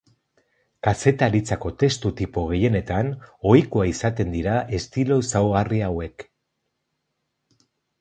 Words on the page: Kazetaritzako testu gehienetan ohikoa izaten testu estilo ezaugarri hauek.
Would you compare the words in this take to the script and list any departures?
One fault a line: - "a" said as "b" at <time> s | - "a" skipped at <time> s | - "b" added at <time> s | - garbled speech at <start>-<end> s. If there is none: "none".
- "tipo" added at 2.2 s
- "testu" said as "dira" at 4.4 s